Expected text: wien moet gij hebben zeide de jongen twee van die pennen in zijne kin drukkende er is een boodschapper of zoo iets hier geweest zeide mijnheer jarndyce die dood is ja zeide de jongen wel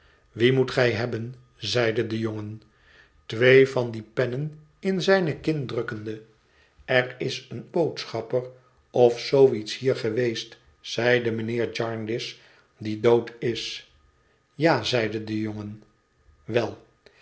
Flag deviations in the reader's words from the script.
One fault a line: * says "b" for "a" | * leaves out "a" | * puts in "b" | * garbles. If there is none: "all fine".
all fine